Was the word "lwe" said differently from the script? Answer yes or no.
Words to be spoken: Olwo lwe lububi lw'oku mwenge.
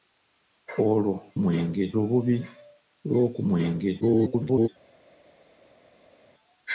yes